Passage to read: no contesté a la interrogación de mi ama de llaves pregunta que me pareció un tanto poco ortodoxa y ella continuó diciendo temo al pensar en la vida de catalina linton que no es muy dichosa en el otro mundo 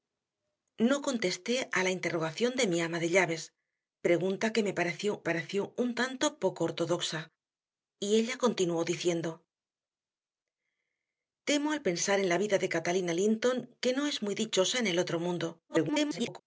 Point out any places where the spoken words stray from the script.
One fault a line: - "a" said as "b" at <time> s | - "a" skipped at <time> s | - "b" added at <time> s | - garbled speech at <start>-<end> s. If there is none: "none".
- "pareció" added at 5.2 s
- garbled speech at 15.7-16.4 s